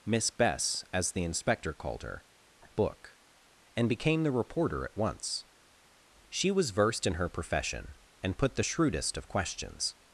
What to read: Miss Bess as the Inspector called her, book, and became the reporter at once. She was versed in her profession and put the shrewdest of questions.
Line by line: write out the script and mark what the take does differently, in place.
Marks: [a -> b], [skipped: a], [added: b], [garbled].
Miss Bess as the Inspector called her, book, and became the reporter at once. She was versed in her profession and put the shrewdest of questions.